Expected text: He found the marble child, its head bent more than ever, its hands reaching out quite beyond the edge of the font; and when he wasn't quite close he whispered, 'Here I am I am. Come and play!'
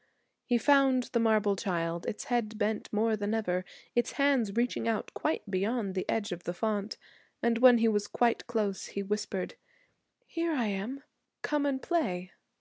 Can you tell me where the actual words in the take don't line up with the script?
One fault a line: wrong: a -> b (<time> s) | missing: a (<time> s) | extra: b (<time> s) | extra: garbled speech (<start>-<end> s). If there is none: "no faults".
wrong: wasn't -> was (7.9 s)
missing: I am (11.0 s)